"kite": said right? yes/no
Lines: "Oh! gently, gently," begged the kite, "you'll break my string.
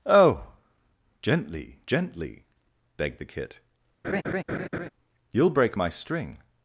no